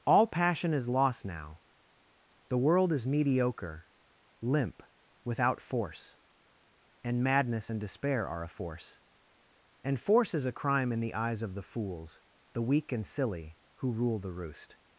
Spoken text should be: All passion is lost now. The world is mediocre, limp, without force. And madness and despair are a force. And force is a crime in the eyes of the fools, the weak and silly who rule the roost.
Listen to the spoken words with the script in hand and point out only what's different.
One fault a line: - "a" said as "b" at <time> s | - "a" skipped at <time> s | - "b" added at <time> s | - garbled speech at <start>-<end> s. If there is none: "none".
none